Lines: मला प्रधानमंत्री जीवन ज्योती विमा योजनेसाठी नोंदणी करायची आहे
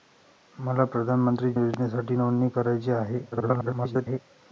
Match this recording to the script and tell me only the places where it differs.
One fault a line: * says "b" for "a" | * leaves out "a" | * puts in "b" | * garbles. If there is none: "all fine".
* leaves out "जीवन ज्योती विमा"
* garbles